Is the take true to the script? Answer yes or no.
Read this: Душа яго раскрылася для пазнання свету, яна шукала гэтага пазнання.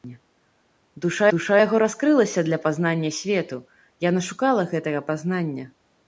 no